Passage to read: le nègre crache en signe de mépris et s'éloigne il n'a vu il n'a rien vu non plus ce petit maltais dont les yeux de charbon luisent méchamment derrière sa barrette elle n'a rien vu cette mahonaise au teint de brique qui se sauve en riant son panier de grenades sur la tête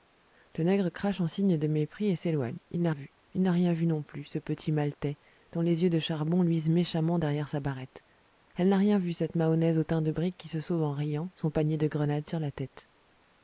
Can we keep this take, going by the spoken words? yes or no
yes